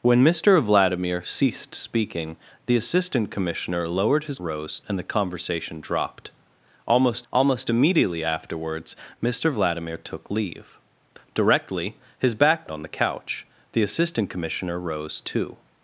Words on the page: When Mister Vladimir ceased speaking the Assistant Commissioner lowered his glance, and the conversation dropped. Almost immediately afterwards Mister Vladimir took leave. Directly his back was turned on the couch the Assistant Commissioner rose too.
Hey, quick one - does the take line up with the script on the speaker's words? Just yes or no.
no